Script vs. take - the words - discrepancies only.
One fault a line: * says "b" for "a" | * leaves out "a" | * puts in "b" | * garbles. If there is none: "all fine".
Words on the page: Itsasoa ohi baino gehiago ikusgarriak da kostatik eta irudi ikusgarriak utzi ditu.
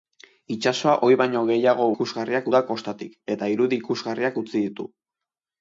all fine